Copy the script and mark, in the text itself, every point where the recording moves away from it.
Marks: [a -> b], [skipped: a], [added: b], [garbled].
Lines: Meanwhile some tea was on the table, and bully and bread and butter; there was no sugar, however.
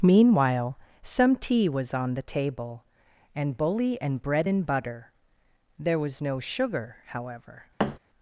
Meanwhile some tea was on the table, and bully and bread and butter; there was no sugar, however.